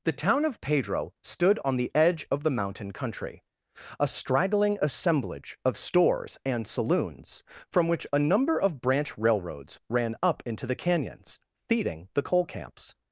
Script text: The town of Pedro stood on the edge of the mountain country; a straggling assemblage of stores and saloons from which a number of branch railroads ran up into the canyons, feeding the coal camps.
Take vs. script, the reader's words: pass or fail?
pass